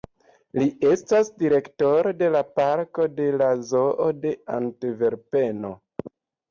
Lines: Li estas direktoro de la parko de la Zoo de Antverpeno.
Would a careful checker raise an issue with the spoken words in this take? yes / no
no